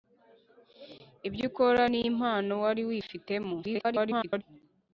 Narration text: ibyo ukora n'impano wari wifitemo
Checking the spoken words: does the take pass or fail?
fail